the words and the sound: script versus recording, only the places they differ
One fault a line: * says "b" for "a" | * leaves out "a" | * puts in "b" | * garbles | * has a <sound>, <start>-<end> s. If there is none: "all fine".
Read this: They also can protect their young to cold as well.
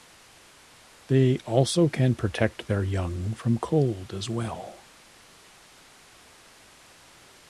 * says "from" for "to"